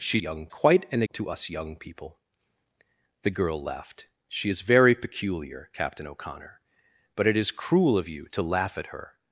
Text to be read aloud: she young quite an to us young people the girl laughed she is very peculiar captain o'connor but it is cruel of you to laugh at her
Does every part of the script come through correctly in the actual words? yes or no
yes